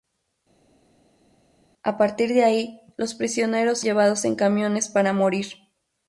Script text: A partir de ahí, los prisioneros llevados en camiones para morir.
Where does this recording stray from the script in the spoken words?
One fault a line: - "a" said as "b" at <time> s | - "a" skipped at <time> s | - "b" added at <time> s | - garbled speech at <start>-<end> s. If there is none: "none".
none